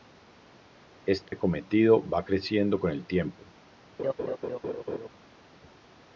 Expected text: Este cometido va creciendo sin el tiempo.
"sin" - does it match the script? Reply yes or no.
no